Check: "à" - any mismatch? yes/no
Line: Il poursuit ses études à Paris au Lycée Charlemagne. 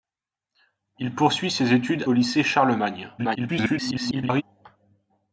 yes